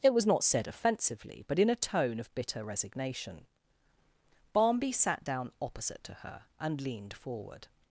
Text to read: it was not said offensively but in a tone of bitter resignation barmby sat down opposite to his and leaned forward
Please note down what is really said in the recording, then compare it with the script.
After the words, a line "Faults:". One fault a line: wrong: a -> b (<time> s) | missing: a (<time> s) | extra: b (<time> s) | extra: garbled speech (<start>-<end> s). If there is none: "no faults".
it was not said offensively but in a tone of bitter resignation barmby sat down opposite to her and leaned forward
Faults:
wrong: his -> her (6.2 s)